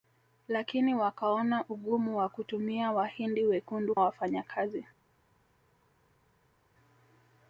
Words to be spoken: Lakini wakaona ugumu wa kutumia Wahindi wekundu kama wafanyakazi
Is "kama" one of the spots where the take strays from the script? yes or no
yes